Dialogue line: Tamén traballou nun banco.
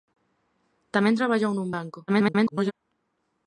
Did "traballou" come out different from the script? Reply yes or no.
no